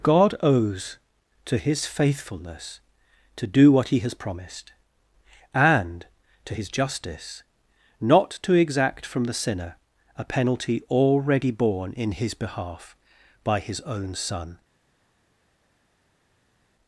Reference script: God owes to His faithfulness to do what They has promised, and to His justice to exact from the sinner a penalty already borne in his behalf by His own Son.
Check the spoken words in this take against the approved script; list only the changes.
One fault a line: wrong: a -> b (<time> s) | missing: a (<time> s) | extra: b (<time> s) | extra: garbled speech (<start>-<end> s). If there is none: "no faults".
wrong: They -> He (3.9 s)
extra: not (8.0 s)